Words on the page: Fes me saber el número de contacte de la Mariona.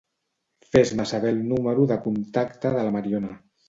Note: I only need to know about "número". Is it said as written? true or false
true